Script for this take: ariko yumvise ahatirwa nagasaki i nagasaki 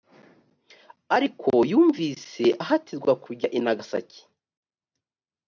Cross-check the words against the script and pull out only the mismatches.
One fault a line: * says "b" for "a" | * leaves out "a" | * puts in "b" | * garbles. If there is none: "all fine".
* says "kujya" for "nagasaki"